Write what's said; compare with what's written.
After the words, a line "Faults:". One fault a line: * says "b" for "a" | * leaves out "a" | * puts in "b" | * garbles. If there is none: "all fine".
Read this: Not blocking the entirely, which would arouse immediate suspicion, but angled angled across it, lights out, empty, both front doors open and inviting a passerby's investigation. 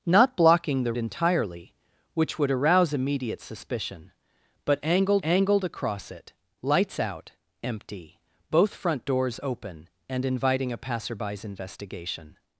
Not blocking the entirely, which would arouse immediate suspicion, but angled angled across it, lights out, empty, both front doors open and inviting a passerby's investigation.
Faults:
all fine